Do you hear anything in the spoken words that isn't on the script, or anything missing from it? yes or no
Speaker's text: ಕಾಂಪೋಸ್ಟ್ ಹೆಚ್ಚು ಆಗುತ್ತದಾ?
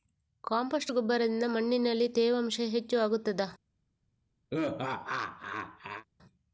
yes